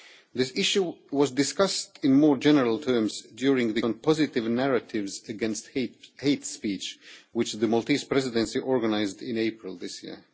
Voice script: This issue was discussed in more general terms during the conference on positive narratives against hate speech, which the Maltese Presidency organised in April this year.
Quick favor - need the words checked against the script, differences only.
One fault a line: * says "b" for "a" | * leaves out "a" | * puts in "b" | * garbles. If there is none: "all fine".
* leaves out "conference"